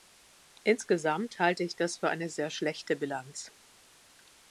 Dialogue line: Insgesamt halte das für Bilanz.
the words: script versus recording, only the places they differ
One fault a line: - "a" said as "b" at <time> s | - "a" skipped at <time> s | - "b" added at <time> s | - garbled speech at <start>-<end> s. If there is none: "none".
- "ich" added at 1.6 s
- "eine sehr schlechte" added at 2.1 s